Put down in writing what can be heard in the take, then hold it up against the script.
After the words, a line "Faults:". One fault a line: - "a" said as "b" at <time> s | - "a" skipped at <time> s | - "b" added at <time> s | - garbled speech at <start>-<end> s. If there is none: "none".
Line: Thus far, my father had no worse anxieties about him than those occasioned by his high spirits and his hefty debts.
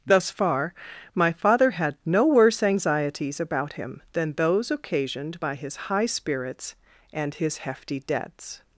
Thus far, my father had no worse anxieties about him than those occasioned by his high spirits and his hefty debts.
Faults:
none